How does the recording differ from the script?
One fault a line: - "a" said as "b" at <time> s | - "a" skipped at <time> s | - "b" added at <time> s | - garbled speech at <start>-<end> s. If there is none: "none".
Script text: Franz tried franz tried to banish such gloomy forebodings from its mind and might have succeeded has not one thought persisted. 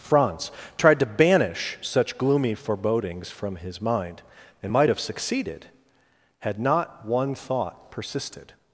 - "franz tried" skipped at 1.0 s
- "its" said as "his" at 3.6 s
- "has" said as "had" at 6.4 s